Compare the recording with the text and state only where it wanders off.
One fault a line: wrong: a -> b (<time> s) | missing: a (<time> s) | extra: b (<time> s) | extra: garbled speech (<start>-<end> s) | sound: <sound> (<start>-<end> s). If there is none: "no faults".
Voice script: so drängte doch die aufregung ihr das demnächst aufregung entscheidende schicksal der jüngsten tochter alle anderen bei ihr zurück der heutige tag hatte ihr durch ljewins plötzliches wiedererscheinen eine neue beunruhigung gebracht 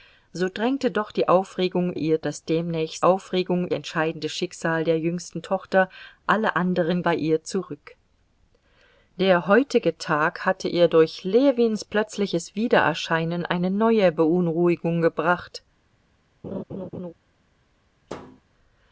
sound: laugh (16.4-17.1 s)
sound: thud (18.1-18.4 s)